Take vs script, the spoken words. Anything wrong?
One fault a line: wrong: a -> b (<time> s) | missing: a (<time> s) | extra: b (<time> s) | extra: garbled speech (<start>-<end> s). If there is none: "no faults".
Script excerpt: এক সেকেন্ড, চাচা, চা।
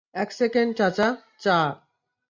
no faults